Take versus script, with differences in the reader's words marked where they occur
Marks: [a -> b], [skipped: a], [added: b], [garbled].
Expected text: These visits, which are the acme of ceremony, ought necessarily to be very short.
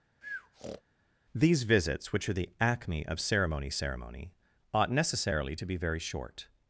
These visits, which are the acme of ceremony, [added: ceremony] ought necessarily to be very short.